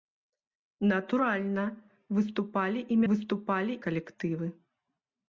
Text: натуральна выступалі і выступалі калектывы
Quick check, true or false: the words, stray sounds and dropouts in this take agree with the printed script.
true